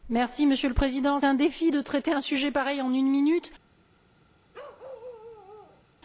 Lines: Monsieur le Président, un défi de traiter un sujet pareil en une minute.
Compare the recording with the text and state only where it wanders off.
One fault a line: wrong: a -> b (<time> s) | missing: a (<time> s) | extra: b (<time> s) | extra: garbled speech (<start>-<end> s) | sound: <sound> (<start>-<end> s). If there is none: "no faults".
sound: bark (4.5-5.8 s)